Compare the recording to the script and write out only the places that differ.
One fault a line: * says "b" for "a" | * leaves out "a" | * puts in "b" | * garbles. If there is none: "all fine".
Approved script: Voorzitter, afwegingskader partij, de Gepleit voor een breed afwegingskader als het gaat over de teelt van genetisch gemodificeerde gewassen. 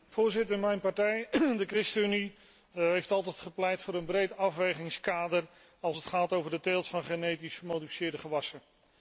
* says "mijn" for "afwegingskader"
* puts in "ChristenUnie heeft altijd"